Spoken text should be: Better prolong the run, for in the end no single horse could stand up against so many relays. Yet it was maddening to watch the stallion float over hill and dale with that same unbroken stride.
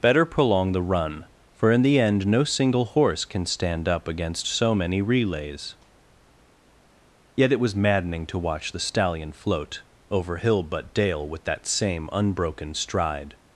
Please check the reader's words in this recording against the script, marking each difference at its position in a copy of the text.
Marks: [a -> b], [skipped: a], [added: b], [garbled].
Better prolong the run, for in the end no single horse [could -> can] stand up against so many relays. Yet it was maddening to watch the stallion float over hill [and -> but] dale with that same unbroken stride.